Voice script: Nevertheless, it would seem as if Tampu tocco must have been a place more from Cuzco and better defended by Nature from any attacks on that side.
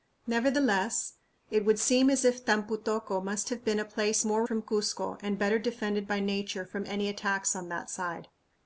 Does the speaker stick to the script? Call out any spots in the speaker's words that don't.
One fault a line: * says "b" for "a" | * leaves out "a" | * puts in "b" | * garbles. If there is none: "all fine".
all fine